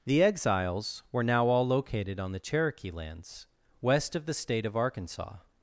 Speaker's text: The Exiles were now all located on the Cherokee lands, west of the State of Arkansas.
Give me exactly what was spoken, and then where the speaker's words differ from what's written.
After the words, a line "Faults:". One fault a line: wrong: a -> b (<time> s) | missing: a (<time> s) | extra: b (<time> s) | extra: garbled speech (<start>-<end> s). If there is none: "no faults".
The Exiles were now all located on the Cherokee lands, west of the State of Arkansas.
Faults:
no faults